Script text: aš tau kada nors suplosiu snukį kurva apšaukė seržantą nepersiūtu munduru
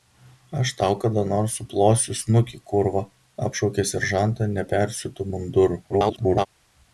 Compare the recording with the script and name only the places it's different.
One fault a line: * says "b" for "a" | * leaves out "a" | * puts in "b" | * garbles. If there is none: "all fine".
* garbles